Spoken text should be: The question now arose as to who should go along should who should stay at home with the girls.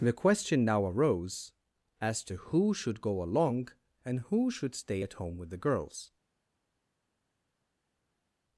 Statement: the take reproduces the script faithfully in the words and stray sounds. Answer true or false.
false